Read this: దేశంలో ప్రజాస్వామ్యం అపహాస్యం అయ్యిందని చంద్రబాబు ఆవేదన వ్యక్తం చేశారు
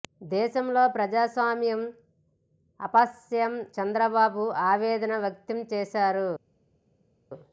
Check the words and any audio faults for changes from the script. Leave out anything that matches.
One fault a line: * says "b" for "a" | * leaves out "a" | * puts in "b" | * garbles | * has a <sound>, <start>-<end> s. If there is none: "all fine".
* leaves out "అయ్యిందని"